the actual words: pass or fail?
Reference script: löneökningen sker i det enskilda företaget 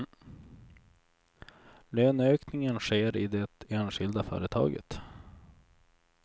pass